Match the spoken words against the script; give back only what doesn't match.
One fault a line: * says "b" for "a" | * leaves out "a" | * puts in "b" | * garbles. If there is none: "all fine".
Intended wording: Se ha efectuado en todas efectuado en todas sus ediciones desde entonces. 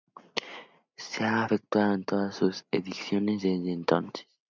* leaves out "efectuado en todas"